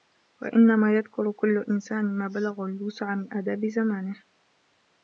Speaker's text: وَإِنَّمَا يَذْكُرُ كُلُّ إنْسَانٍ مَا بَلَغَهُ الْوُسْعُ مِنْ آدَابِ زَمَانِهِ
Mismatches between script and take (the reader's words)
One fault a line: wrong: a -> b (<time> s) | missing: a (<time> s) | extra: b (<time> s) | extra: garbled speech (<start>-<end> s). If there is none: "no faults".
no faults